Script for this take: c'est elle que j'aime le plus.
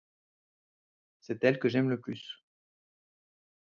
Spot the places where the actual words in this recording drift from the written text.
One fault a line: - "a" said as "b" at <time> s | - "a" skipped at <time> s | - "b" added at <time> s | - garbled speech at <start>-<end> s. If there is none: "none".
none